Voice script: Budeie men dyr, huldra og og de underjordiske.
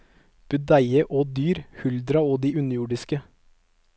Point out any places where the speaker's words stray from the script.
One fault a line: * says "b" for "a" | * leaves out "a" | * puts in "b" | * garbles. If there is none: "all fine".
* says "og" for "men"
* leaves out "og"